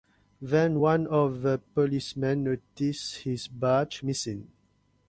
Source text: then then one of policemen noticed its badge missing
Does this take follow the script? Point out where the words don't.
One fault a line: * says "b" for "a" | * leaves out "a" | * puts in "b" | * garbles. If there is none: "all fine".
* leaves out "then"
* puts in "the"
* says "his" for "its"